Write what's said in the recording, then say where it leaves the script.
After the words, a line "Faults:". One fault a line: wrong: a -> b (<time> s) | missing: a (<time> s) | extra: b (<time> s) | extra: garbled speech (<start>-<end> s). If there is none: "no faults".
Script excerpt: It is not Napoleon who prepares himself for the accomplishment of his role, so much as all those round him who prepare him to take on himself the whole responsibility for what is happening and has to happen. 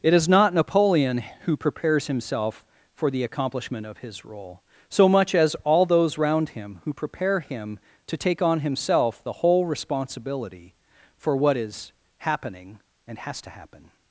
It is not Napoleon who prepares himself for the accomplishment of his role, so much as all those round him who prepare him to take on himself the whole responsibility for what is happening and has to happen.
Faults:
no faults